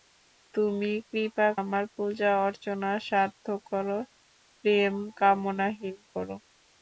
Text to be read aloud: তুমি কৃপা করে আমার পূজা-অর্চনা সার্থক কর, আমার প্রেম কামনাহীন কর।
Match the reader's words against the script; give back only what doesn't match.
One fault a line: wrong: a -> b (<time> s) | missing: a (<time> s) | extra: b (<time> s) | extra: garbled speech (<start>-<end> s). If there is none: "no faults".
missing: করে (1.5 s)
missing: আমার (3.9 s)